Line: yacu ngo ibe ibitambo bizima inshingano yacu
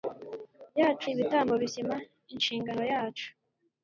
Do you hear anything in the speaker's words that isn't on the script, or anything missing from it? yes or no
yes